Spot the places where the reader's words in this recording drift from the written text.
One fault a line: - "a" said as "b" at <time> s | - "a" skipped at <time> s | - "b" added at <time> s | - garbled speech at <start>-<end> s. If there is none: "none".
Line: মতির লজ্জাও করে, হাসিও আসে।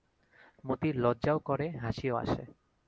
none